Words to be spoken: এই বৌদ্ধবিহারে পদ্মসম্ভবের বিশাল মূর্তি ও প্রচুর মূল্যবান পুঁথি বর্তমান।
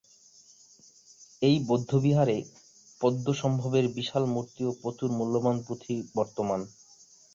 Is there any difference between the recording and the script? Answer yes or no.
no